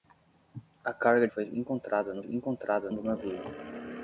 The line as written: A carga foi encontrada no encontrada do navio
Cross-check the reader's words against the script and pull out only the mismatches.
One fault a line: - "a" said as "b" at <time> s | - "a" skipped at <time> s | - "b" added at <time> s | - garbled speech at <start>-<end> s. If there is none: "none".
none